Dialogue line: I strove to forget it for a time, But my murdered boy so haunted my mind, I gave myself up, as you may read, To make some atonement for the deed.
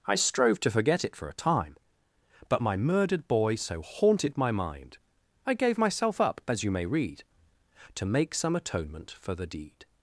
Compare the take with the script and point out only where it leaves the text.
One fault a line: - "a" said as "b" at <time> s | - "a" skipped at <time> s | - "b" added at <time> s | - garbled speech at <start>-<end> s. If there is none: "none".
none